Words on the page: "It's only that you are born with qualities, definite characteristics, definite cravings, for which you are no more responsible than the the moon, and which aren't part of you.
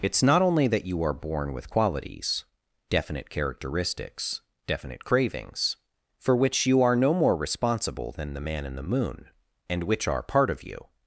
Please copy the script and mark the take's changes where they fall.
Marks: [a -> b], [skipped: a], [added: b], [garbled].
"It's [added: not] only that you are born with qualities, definite characteristics, definite cravings, for which you are no more responsible than the [added: man in] the moon, and which [aren't -> are] part of you.